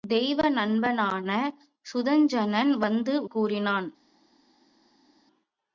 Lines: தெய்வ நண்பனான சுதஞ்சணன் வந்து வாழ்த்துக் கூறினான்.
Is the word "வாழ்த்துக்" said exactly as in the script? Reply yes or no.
no